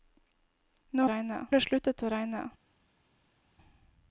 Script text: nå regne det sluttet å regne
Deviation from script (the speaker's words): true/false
false